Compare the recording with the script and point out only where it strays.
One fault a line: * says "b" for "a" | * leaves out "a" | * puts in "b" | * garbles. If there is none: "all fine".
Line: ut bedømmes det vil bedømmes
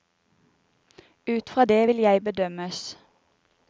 * says "fra" for "bedømmes"
* puts in "jeg"